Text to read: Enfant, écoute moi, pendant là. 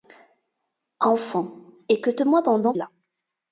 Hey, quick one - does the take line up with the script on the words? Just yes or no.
yes